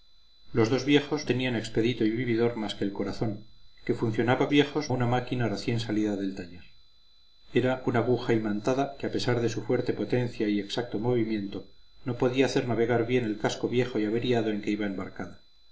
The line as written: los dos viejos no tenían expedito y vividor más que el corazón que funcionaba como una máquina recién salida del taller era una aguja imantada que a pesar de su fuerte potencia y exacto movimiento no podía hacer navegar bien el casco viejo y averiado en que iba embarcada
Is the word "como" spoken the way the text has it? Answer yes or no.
no